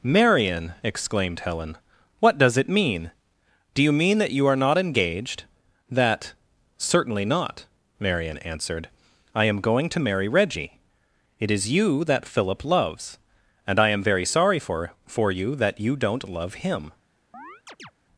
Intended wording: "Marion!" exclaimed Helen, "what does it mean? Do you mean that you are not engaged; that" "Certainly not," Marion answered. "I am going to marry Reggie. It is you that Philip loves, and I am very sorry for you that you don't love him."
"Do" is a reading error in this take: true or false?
false